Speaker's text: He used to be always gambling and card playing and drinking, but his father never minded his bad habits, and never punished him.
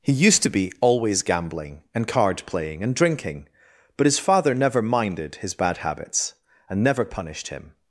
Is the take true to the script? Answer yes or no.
yes